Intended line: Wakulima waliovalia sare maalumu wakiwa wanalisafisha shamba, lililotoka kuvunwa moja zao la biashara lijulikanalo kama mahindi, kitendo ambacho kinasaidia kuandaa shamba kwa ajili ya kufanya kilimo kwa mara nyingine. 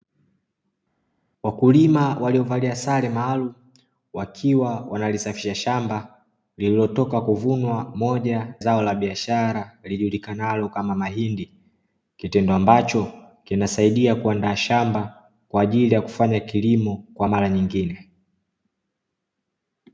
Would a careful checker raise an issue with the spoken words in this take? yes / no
no